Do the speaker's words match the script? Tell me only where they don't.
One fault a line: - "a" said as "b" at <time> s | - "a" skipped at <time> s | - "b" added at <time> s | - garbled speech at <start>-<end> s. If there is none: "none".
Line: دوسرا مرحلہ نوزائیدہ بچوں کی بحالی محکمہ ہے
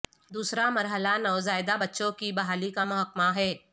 - "کا" added at 2.7 s